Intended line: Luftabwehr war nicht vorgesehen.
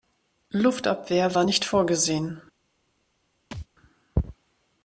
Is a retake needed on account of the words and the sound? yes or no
yes